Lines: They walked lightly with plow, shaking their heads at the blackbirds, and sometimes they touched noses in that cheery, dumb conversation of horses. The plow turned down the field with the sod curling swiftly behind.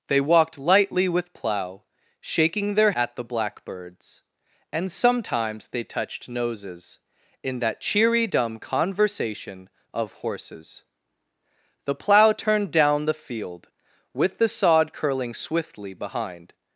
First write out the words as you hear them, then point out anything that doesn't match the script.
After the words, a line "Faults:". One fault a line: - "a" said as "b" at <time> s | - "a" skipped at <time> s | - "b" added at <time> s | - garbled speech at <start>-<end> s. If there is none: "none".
They walked lightly with plow, shaking their at the blackbirds, and sometimes they touched noses in that cheery, dumb conversation of horses. The plow turned down the field with the sod curling swiftly behind.
Faults:
- "heads" skipped at 2.9 s